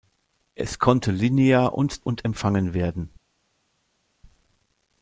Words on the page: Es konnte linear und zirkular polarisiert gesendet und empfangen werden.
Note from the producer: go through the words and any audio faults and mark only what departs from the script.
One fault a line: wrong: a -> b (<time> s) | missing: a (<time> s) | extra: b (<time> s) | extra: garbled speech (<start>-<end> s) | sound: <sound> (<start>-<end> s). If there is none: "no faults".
missing: zirkular polarisiert gesendet (2.0 s)